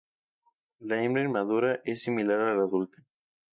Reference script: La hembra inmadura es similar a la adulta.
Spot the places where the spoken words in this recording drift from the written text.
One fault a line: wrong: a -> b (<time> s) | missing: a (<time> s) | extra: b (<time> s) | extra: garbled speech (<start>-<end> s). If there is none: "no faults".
no faults